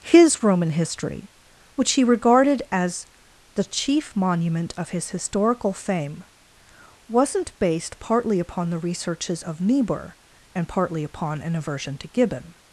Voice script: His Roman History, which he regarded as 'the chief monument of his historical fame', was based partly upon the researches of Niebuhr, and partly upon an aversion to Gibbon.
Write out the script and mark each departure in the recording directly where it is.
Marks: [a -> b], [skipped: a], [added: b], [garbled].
His Roman History, which he regarded as 'the chief monument of his historical fame', [was -> wasn't] based partly upon the researches of Niebuhr, and partly upon an aversion to Gibbon.